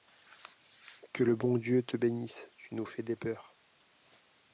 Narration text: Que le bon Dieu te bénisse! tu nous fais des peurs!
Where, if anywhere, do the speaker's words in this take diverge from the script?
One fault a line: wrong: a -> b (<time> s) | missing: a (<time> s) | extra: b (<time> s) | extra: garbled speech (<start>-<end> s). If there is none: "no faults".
no faults